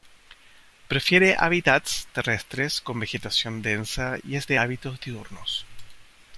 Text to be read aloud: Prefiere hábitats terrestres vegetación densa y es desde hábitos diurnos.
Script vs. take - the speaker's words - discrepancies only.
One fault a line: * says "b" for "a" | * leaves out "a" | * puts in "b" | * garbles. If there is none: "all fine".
* puts in "con"
* says "de" for "desde"